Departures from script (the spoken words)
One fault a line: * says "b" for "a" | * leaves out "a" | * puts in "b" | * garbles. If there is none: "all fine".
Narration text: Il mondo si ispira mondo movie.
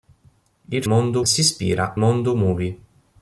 all fine